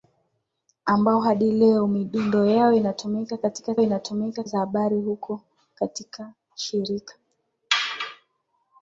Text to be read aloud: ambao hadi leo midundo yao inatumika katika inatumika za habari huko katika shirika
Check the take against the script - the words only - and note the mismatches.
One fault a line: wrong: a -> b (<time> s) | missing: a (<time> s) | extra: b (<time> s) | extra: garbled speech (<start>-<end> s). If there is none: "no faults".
no faults